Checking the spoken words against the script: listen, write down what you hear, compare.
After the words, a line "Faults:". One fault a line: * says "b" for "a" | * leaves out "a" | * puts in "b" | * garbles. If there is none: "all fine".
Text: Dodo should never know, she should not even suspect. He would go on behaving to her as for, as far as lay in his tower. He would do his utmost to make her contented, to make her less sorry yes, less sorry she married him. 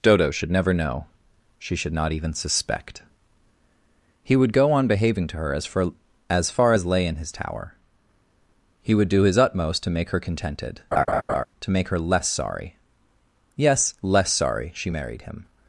Dodo should never know, she should not even suspect. He would go on behaving to her as for, as far as lay in his tower. He would do his utmost to make her contented, to make her less sorry yes, less sorry she married him.
Faults:
all fine